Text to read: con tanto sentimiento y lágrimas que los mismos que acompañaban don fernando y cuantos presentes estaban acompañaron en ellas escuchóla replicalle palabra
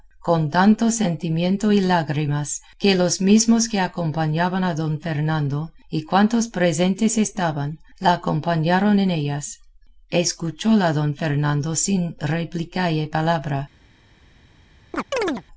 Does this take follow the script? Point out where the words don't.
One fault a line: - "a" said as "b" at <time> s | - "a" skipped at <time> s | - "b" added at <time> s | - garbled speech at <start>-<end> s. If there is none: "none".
- "a" added at 4.6 s
- "la" added at 8.0 s
- "don fernando sin" added at 10.9 s